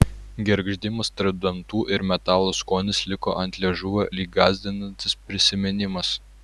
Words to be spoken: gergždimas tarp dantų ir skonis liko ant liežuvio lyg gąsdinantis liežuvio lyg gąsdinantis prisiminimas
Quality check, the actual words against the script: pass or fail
fail